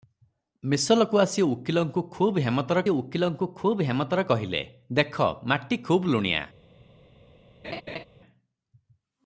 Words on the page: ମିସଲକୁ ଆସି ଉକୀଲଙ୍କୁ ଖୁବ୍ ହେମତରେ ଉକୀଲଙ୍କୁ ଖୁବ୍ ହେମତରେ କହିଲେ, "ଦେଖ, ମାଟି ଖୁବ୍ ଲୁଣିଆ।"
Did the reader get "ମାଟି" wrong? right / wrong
right